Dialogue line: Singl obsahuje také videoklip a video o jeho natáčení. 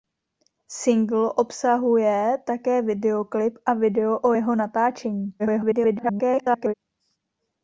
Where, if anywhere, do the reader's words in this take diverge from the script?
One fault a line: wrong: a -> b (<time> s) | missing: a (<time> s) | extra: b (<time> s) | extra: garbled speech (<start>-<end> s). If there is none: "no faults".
extra: garbled speech (5.4-6.7 s)